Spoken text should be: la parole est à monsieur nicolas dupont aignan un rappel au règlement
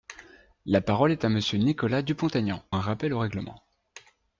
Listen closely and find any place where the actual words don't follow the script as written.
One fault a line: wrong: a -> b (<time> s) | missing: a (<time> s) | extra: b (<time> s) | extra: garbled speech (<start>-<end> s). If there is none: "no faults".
no faults